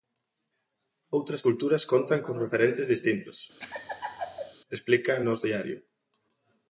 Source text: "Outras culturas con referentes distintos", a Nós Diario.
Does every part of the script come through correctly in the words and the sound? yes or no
no